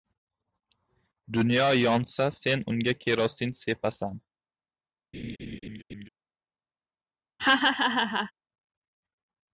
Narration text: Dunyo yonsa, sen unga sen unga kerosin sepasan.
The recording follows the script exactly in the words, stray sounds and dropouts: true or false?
false